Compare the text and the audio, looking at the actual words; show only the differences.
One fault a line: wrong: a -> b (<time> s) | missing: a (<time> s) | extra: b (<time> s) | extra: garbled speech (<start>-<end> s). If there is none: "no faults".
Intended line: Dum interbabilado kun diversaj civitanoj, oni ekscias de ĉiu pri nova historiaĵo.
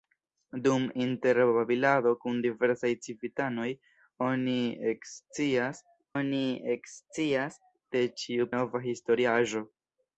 extra: oni ekscias (6.2 s)
missing: pri (8.5 s)